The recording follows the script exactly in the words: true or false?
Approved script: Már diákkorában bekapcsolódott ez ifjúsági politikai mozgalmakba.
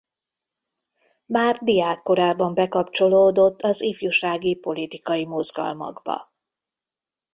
false